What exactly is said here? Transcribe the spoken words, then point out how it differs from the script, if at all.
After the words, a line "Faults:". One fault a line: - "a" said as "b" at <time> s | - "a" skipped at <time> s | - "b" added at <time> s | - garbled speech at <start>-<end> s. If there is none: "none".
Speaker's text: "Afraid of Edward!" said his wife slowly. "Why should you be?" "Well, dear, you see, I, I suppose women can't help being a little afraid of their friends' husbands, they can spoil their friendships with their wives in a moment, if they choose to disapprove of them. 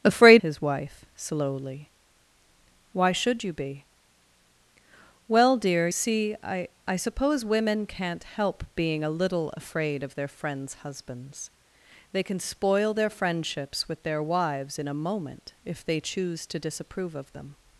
"Afraid his wife slowly. "Why should you be?" "Well, dear, see, I, I suppose women can't help being a little afraid of their friends' husbands, they can spoil their friendships with their wives in a moment, if they choose to disapprove of them.
Faults:
- "of Edward said" skipped at 0.4 s
- "you" skipped at 5.9 s